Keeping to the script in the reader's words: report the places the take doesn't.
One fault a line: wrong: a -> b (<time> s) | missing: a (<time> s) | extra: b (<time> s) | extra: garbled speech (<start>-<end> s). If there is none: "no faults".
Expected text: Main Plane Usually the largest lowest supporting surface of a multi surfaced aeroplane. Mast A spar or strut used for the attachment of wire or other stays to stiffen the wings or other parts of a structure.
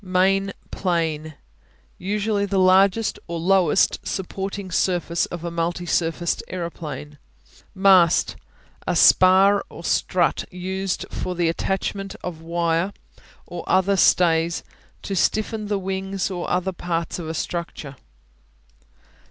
extra: or (3.3 s)